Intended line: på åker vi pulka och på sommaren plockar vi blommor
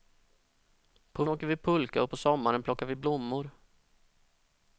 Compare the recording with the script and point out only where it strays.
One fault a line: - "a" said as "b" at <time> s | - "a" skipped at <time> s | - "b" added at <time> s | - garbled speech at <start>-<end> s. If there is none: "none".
none